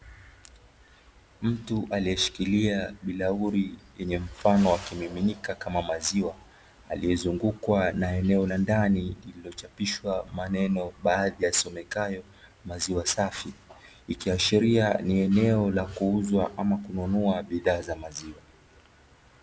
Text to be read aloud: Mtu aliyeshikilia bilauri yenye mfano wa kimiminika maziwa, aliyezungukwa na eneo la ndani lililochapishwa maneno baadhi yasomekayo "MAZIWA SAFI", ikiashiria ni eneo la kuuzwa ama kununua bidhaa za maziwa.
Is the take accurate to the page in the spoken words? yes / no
no